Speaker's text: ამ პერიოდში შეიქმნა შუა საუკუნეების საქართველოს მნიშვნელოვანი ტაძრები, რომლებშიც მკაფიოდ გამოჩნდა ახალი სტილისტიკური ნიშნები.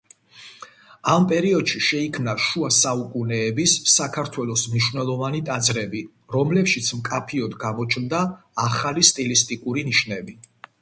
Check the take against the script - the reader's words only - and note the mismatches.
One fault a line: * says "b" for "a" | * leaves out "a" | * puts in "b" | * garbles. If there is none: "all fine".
all fine